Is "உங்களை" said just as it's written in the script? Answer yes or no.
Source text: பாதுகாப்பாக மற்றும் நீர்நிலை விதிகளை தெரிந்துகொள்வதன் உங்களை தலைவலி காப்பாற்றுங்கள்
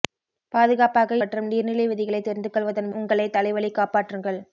yes